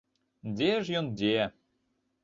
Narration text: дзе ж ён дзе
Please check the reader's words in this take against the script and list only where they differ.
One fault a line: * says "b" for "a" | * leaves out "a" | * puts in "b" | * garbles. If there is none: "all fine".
all fine